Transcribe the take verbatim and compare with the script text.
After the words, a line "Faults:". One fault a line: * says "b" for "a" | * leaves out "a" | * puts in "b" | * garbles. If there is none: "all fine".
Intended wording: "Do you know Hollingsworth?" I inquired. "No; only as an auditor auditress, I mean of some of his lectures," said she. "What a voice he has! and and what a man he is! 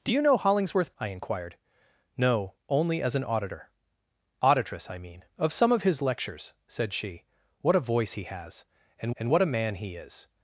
"Do you know Hollingsworth?" I inquired. "No; only as an auditor auditress, I mean of some of his lectures," said she. "What a voice he has! and and what a man he is!
Faults:
all fine